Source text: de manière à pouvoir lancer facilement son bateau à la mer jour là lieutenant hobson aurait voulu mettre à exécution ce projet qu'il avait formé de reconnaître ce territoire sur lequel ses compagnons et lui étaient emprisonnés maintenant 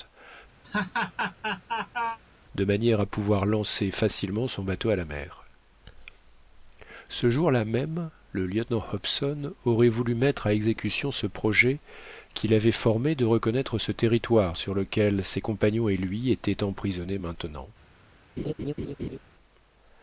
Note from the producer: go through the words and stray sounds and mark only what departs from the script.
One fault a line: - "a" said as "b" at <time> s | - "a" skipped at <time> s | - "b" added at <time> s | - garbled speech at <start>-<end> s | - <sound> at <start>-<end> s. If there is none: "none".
- laugh at 0.6-2.2 s
- "ce" added at 7.1 s
- "même le" added at 7.7 s
- laugh at 18.4-19.2 s